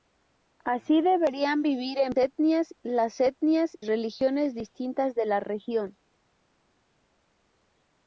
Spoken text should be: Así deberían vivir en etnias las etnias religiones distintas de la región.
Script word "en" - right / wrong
right